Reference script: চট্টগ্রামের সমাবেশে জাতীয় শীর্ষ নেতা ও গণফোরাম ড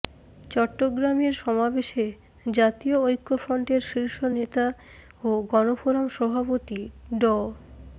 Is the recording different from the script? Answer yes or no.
yes